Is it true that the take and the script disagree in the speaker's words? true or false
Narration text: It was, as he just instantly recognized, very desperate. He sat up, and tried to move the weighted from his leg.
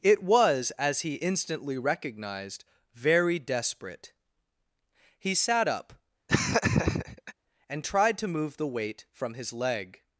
true